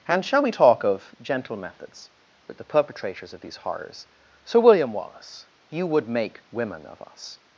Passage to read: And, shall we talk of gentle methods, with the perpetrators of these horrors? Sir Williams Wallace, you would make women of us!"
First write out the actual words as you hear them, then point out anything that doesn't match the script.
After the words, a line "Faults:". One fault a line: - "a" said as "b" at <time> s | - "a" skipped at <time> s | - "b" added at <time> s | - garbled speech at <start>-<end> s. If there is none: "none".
And, shall we talk of gentle methods, with the perpetrators of these horrors? Sir William Wallace, you would make women of us!"
Faults:
- "Williams" said as "William" at 4.6 s